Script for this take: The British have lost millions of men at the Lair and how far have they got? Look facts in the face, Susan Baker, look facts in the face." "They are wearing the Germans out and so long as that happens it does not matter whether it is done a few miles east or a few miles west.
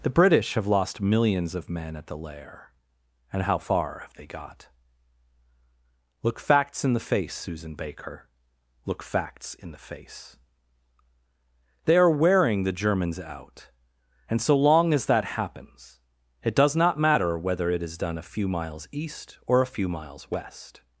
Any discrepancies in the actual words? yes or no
no